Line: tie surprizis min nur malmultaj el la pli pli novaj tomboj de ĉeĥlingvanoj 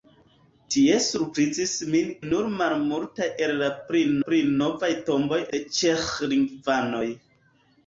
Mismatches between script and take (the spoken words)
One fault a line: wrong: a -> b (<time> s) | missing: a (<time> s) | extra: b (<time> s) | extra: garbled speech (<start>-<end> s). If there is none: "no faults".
no faults